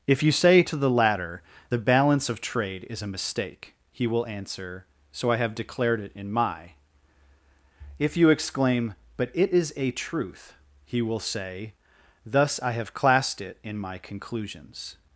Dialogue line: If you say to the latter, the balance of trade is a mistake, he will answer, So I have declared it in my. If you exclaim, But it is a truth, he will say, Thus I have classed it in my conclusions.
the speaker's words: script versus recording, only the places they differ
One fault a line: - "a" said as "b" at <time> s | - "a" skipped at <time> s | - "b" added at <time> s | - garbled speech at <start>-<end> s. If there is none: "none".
none